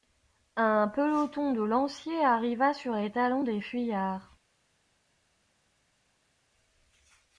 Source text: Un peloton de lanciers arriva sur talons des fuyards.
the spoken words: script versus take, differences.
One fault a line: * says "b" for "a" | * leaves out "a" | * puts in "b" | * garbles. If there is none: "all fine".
* puts in "les"